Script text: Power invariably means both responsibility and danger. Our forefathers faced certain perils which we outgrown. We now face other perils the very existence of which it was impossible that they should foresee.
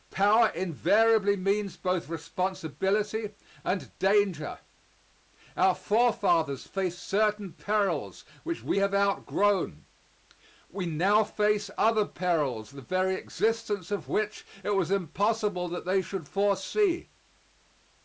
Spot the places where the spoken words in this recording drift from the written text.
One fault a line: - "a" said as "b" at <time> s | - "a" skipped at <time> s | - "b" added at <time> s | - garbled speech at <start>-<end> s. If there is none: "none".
- "have" added at 8.8 s